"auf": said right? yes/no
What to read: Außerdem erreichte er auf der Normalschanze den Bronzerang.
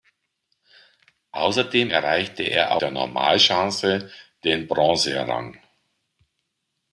no